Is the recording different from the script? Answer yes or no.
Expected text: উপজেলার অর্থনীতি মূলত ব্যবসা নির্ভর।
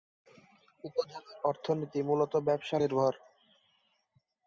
no